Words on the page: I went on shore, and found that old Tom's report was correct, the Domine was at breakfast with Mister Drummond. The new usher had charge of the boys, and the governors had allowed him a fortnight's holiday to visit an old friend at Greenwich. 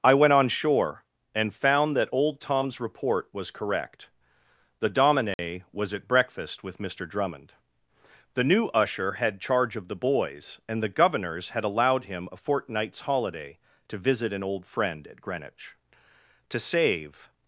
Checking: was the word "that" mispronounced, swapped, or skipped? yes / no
no